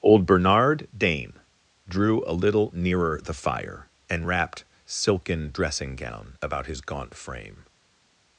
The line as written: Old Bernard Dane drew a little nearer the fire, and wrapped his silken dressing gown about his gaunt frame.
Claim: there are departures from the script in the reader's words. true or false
true